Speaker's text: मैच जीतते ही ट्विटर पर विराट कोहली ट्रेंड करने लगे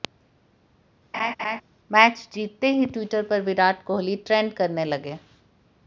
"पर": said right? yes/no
yes